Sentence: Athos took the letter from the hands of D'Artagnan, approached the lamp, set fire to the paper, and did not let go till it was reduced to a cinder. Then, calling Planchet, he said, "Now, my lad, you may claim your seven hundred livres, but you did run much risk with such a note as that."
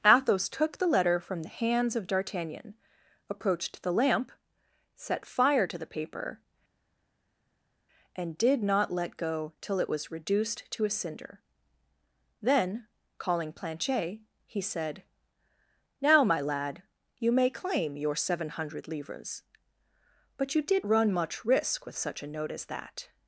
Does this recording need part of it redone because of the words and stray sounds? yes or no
no